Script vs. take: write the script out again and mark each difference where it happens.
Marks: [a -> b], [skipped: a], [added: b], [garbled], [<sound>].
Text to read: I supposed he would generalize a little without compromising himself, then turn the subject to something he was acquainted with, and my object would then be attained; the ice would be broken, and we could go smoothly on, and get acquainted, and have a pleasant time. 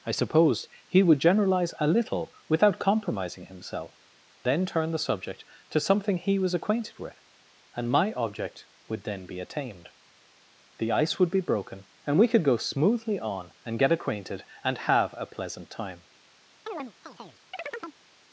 I supposed he would generalize a little without compromising himself, then turn the subject to something he was acquainted with, and my object would then be attained; the ice would be broken, and we could go smoothly on, and get acquainted, and have a pleasant time. [chirp]